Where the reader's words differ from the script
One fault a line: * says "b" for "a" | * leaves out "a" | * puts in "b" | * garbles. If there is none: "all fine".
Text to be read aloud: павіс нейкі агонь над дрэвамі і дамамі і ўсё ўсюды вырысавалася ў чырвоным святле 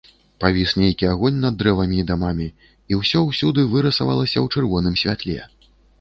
all fine